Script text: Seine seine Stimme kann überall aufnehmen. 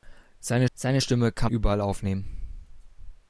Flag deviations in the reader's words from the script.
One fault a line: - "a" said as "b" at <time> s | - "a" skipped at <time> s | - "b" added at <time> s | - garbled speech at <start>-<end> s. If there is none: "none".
none